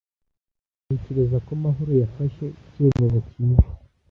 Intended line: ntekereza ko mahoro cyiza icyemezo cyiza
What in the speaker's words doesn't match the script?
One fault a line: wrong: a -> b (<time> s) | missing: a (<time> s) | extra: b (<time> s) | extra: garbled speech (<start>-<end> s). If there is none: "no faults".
wrong: cyiza -> yafashe (2.0 s)